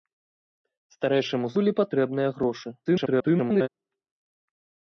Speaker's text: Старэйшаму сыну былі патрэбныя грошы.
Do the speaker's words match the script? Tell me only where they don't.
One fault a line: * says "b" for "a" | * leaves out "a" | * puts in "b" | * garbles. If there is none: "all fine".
* leaves out "сыну"
* garbles